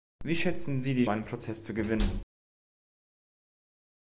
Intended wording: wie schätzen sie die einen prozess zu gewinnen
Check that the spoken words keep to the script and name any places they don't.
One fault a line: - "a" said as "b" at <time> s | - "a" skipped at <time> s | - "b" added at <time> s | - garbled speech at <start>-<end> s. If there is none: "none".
none